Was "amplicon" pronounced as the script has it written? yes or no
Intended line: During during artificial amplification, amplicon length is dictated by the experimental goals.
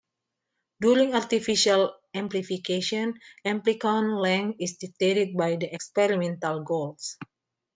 yes